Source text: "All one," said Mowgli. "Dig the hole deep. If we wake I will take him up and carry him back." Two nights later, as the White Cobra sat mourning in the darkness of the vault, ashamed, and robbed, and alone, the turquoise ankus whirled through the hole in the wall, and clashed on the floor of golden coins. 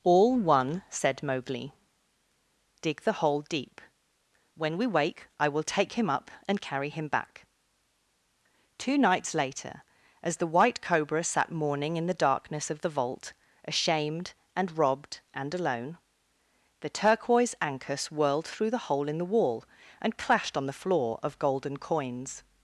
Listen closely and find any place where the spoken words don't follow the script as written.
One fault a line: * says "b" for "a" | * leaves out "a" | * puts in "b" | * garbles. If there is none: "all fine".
* says "When" for "If"